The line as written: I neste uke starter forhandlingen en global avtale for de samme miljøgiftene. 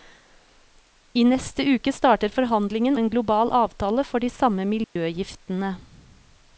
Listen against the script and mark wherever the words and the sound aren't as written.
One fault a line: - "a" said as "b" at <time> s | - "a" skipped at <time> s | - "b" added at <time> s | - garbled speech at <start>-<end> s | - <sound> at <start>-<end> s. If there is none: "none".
- dropout at 4.8-5.0 s